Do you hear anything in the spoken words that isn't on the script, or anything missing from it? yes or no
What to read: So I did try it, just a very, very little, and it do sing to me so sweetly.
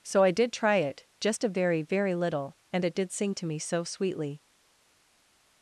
yes